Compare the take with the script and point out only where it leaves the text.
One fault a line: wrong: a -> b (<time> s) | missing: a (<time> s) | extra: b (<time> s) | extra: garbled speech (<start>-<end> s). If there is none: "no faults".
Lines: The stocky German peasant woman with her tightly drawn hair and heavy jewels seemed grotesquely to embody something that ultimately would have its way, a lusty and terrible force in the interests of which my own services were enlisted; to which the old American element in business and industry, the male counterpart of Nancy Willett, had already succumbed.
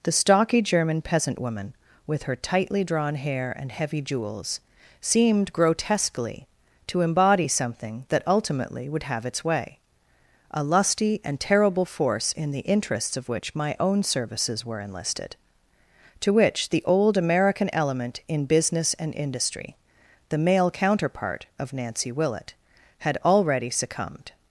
no faults